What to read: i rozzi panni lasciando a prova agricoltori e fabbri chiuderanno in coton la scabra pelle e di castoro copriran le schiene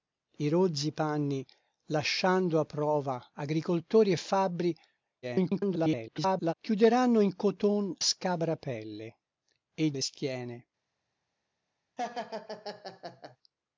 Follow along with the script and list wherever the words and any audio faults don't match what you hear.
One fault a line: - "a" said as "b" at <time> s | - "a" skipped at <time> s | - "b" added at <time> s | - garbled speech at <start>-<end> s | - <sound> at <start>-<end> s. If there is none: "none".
- garbled speech at 5.2-6.5 s
- "la" skipped at 7.9 s
- "di castoro copriran" skipped at 9.9 s
- laugh at 12.0-13.4 s